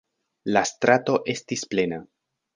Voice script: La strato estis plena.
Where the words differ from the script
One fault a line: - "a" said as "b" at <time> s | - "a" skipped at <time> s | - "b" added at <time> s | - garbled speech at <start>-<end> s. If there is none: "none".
none